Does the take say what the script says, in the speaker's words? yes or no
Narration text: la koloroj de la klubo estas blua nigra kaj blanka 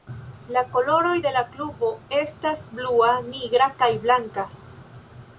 yes